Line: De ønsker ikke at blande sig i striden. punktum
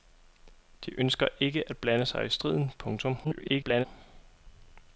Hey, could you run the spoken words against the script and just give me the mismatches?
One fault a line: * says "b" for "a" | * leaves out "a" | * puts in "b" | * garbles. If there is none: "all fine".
* garbles